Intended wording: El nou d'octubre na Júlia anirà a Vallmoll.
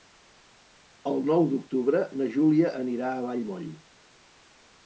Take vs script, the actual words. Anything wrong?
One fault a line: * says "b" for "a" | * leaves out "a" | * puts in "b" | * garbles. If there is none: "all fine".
all fine